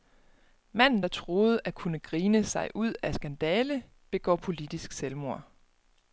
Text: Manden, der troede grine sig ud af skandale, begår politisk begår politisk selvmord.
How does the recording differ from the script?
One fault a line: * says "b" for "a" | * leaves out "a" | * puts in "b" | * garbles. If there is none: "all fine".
* puts in "at kunne"
* leaves out "begår politisk"